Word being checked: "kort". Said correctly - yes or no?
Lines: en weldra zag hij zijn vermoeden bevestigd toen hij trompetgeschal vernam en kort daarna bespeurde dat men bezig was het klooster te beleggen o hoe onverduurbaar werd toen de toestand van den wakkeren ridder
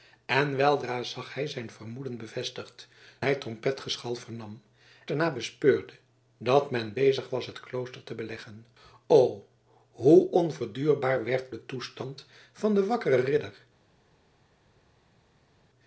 no